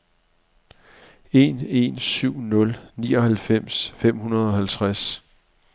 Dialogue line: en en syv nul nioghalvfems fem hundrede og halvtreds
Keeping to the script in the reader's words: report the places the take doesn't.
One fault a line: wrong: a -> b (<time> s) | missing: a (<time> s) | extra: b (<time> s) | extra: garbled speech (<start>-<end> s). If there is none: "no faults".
no faults